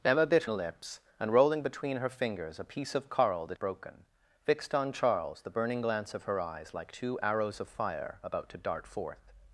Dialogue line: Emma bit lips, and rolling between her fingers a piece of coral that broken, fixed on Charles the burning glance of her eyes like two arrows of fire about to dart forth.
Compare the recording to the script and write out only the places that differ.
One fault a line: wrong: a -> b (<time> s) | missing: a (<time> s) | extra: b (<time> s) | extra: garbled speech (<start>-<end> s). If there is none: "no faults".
no faults